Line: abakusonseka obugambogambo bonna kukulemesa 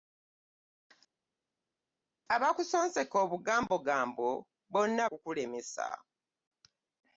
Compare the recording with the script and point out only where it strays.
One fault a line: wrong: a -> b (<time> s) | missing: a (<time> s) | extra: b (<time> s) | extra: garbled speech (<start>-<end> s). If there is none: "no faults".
no faults